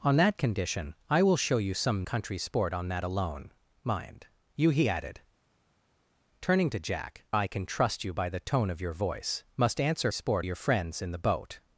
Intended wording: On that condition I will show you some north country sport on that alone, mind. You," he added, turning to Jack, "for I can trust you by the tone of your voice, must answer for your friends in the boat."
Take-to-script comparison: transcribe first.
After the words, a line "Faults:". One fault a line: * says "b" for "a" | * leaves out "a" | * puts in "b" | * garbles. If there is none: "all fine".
On that condition I will show you some country sport on that alone, mind. You," he added, turning to Jack, "I can trust you by the tone of your voice, must answer sport your friends in the boat."
Faults:
* leaves out "north"
* leaves out "for"
* says "sport" for "for"